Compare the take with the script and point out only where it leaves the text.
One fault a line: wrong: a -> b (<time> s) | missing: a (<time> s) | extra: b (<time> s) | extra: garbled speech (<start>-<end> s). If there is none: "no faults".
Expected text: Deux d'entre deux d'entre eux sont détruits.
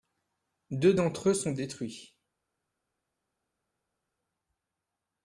missing: deux d'entre (1.3 s)